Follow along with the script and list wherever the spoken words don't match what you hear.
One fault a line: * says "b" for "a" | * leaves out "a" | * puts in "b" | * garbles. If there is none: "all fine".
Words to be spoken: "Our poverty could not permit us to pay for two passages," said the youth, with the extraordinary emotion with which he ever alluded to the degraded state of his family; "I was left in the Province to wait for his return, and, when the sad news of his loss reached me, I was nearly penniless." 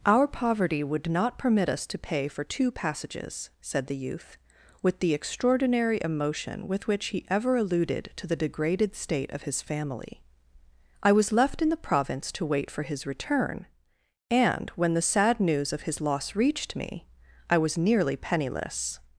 * says "would" for "could"